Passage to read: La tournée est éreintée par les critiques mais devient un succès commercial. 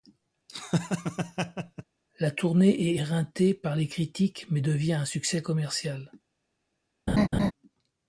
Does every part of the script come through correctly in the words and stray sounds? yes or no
no